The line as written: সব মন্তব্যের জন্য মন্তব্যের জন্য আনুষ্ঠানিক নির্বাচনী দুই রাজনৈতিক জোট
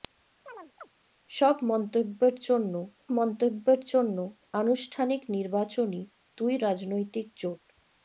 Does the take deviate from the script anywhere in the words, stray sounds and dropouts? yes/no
yes